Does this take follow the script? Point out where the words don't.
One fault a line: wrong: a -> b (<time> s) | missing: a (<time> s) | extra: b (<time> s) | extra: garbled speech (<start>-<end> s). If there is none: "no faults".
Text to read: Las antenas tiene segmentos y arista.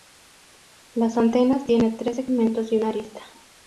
extra: tres (1.9 s)
extra: una (2.7 s)